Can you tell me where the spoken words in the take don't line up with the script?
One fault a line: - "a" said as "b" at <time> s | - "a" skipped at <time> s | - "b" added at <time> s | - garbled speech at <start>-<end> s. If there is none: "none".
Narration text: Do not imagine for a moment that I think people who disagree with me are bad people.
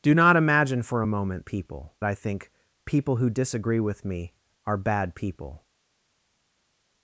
- "that" said as "people" at 1.4 s